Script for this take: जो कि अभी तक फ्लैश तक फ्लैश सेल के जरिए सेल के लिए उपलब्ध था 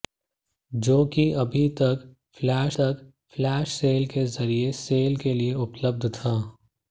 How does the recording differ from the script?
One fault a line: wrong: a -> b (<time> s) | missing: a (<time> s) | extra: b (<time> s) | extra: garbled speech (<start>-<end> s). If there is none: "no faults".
no faults